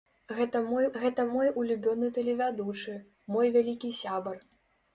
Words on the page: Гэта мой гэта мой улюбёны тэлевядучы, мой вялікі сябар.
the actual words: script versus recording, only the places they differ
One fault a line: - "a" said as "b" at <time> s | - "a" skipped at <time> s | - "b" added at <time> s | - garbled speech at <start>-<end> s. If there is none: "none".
none